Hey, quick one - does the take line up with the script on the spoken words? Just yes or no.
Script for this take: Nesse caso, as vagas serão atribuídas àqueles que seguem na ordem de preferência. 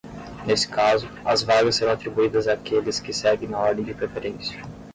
yes